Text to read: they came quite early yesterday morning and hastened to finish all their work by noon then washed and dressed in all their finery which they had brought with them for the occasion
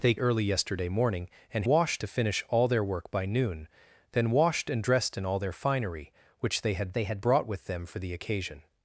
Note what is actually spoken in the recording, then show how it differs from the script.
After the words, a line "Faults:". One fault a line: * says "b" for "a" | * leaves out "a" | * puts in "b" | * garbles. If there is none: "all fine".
they early yesterday morning and washed to finish all their work by noon then washed and dressed in all their finery which they had they had brought with them for the occasion
Faults:
* leaves out "came quite"
* says "washed" for "hastened"
* puts in "they had"